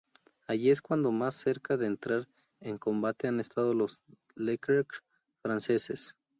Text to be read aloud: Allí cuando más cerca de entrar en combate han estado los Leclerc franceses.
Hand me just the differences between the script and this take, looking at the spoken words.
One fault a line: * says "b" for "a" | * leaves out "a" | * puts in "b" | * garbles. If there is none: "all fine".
* puts in "es"